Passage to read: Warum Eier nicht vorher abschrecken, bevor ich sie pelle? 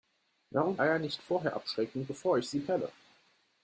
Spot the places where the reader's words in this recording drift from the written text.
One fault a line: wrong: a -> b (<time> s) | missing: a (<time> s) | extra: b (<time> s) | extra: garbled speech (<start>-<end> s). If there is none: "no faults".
no faults